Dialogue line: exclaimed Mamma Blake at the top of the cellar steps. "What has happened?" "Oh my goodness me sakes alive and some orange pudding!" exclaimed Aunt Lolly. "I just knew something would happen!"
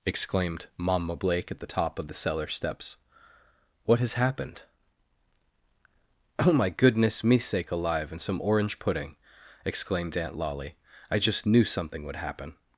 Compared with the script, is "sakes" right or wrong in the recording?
wrong